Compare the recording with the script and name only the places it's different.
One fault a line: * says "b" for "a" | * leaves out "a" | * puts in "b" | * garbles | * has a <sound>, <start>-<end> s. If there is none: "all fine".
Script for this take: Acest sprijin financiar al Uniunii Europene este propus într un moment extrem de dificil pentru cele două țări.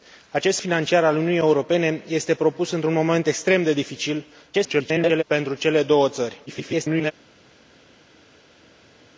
* leaves out "sprijin"
* garbles
* garbles